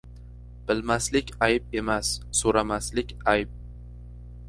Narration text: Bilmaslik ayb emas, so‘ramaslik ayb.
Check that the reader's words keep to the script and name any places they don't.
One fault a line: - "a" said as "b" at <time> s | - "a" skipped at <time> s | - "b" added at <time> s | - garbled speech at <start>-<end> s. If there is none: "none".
none